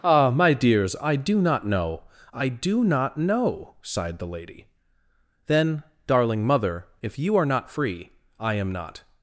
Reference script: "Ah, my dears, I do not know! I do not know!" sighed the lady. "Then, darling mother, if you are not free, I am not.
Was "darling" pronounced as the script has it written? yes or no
yes